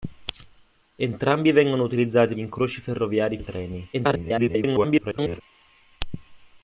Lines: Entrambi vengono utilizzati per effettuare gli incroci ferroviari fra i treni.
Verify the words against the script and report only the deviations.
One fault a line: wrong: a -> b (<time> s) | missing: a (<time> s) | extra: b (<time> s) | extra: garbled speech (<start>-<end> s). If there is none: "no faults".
missing: per effettuare gli (2.3 s)
missing: fra (3.4 s)
extra: garbled speech (3.9-5.4 s)